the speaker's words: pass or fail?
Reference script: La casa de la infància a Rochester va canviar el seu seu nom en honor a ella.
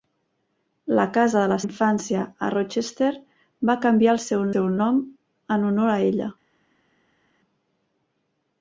pass